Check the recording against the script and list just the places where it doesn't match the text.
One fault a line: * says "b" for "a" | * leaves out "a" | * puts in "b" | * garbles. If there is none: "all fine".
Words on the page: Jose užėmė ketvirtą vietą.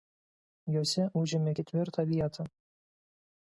all fine